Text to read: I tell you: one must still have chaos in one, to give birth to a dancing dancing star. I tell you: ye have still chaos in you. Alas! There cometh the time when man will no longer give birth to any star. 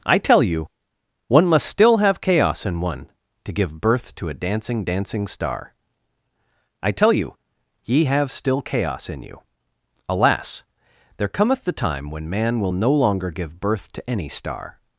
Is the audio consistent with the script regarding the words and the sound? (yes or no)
yes